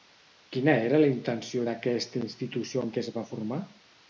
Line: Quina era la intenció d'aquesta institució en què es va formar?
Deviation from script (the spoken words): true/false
false